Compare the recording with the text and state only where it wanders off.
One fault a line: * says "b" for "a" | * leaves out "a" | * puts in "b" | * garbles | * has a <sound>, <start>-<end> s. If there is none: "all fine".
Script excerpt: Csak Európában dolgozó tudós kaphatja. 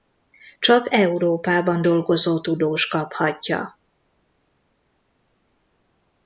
all fine